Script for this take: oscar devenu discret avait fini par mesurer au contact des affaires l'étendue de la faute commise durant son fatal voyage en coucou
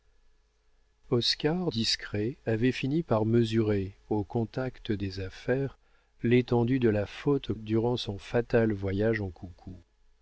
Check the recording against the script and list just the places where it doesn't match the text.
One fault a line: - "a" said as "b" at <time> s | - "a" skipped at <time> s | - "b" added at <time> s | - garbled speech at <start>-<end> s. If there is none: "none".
- "devenu" skipped at 1.7 s
- "commise" skipped at 7.5 s